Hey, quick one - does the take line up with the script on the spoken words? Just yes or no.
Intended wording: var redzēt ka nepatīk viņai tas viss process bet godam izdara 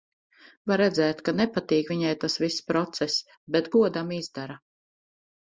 yes